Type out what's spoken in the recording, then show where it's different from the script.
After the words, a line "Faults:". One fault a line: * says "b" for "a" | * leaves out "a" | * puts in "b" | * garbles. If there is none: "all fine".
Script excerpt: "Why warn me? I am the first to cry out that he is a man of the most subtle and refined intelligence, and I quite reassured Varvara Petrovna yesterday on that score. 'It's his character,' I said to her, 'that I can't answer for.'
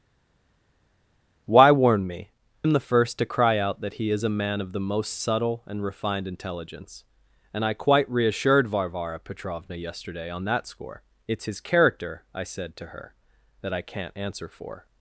"Why warn me? am the first to cry out that he is a man of the most subtle and refined intelligence, and I quite reassured Varvara Petrovna yesterday on that score. 'It's his character,' I said to her, 'that I can't answer for.'
Faults:
* leaves out "I"